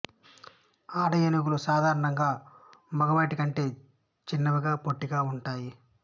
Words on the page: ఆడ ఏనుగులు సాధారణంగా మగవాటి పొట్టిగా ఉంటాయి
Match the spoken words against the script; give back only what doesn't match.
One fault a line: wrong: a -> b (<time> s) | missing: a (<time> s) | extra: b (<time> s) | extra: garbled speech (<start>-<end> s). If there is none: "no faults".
extra: కంటే చిన్నవిగా (3.3 s)